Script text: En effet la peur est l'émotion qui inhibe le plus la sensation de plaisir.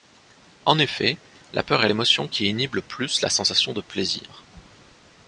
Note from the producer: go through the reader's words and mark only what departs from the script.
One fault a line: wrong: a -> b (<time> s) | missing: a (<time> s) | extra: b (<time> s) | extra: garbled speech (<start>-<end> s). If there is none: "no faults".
no faults